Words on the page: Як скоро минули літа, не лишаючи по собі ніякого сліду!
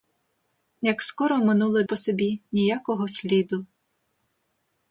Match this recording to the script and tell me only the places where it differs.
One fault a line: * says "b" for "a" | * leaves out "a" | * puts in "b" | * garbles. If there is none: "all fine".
* leaves out "літа не лишаючи"